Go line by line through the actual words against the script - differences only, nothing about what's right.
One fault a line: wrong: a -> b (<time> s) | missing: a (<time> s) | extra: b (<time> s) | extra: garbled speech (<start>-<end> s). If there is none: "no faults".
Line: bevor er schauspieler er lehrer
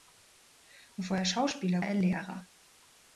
no faults